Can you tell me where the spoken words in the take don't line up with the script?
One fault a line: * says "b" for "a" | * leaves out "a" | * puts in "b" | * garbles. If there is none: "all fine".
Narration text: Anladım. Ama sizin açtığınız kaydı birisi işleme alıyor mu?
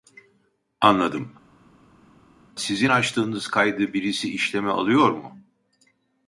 * leaves out "Ama"